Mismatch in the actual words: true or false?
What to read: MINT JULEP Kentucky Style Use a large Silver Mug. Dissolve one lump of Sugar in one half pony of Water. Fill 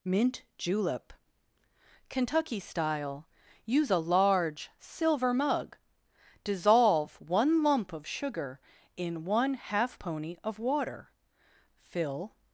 false